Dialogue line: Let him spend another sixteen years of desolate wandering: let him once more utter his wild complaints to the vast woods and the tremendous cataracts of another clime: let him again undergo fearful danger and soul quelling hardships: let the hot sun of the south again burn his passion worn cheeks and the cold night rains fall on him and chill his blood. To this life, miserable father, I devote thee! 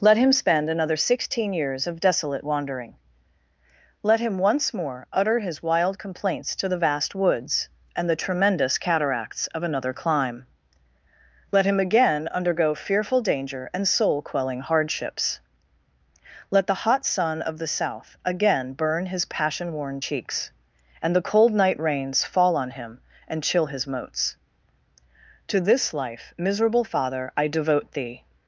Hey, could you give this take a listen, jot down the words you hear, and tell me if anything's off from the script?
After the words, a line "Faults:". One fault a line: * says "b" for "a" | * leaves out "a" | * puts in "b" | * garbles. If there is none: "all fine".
Let him spend another sixteen years of desolate wandering: let him once more utter his wild complaints to the vast woods and the tremendous cataracts of another clime: let him again undergo fearful danger and soul quelling hardships: let the hot sun of the south again burn his passion worn cheeks and the cold night rains fall on him and chill his moats. To this life, miserable father, I devote thee!
Faults:
* says "moats" for "blood"